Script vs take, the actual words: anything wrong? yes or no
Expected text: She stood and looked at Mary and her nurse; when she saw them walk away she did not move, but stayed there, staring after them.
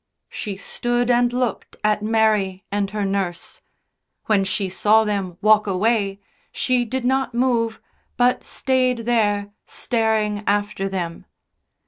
no